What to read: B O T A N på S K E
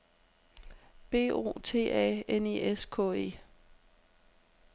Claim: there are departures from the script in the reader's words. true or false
true